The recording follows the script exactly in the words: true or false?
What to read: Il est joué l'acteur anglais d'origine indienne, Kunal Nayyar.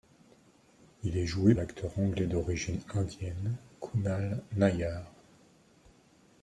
true